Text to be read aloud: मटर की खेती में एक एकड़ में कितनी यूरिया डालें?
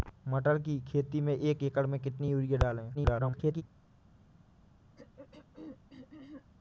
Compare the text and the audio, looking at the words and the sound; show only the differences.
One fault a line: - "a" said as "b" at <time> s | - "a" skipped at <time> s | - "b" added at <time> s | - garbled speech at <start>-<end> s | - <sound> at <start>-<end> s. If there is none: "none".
- garbled speech at 2.9-3.6 s
- throat clearing at 4.9-6.5 s